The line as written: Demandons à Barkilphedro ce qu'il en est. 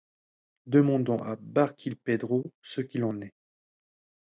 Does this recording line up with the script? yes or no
yes